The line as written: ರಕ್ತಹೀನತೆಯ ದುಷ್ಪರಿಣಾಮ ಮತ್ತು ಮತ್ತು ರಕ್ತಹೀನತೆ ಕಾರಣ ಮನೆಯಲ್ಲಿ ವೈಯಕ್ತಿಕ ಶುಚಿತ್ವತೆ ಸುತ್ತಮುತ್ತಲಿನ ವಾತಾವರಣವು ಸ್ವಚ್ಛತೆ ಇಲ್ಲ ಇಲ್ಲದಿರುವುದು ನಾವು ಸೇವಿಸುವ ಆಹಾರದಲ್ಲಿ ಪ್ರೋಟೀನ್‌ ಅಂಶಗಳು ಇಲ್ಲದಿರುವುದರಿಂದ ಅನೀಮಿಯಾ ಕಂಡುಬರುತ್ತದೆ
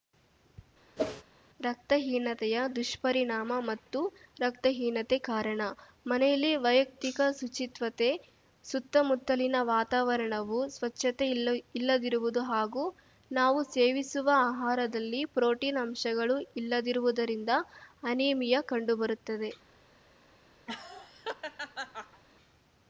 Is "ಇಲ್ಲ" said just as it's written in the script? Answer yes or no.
yes